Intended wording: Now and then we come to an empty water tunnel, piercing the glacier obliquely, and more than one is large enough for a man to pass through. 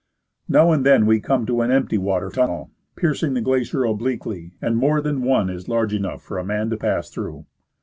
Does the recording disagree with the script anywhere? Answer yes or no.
no